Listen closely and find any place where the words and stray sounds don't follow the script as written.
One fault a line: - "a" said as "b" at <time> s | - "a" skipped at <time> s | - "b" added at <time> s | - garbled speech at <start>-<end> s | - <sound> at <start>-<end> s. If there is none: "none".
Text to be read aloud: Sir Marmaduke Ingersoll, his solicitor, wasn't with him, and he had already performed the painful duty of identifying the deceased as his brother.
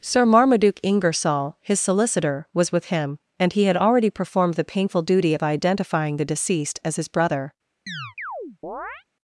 - "wasn't" said as "was" at 2.5 s
- chirp at 7.9-9.0 s